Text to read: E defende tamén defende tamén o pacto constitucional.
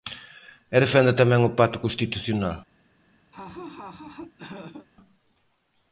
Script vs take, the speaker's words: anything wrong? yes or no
yes